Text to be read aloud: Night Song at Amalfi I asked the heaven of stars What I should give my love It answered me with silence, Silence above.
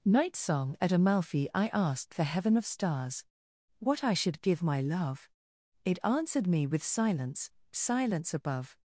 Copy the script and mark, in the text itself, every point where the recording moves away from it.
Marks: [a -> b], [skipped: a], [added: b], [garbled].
Night Song at Amalfi I asked the heaven of stars What I should give my love It answered me with silence, Silence above.